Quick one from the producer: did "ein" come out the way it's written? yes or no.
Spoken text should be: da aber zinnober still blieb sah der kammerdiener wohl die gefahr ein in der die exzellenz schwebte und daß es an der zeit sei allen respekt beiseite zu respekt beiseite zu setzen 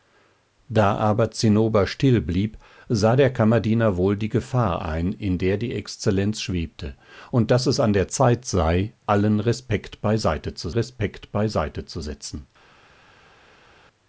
yes